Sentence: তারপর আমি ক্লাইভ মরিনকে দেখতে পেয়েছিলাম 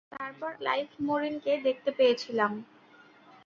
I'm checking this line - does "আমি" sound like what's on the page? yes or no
no